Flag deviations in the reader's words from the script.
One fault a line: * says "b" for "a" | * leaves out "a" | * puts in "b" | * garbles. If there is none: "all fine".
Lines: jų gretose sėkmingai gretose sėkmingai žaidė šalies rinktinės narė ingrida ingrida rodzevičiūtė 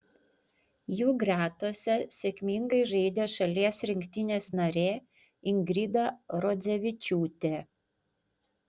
* leaves out "gretose sėkmingai"
* leaves out "ingrida"